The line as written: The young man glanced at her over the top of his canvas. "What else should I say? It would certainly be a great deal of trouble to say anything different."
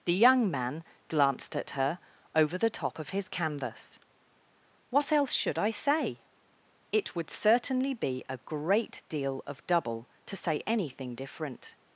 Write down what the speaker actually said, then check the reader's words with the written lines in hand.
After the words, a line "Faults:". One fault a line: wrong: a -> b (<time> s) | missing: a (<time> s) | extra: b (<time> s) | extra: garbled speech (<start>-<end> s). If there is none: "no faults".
The young man glanced at her over the top of his canvas. "What else should I say? It would certainly be a great deal of double to say anything different."
Faults:
wrong: trouble -> double (9.7 s)